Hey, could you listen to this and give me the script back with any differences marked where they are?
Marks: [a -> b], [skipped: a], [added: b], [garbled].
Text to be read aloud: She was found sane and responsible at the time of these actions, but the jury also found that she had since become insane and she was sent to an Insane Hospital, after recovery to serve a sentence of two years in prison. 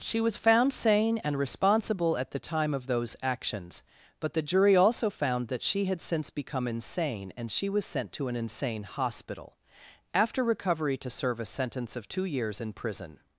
She was found sane and responsible at the time of [these -> those] actions, but the jury also found that she had since become insane and she was sent to an Insane Hospital, after recovery to serve a sentence of two years in prison.